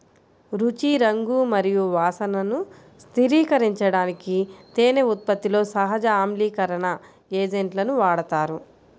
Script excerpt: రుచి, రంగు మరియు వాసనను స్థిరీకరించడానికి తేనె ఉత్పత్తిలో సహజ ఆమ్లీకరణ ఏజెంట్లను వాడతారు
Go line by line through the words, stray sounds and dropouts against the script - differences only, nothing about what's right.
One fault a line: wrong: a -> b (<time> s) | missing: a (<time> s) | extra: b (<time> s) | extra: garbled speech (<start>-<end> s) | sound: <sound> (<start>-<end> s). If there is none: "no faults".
no faults